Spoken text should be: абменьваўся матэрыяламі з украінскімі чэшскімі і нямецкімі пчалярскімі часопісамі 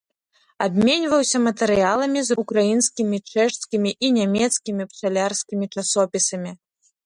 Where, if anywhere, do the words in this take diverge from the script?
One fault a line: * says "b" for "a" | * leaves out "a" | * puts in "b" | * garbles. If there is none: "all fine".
all fine